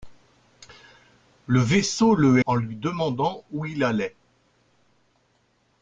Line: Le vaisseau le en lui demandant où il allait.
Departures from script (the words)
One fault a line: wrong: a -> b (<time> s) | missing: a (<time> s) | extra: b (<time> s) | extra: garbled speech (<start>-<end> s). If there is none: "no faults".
no faults